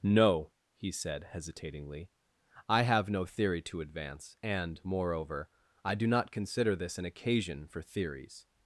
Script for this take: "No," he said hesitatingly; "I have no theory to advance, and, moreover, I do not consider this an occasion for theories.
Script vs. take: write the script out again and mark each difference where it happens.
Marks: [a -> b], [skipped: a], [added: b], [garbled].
"No," he said hesitatingly; "I have no theory to advance, and, moreover, I do not consider this an occasion for theories.